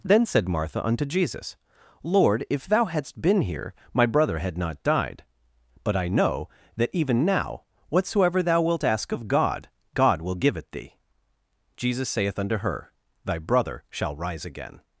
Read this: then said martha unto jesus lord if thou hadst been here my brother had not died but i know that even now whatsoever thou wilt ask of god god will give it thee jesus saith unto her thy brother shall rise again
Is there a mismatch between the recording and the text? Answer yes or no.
no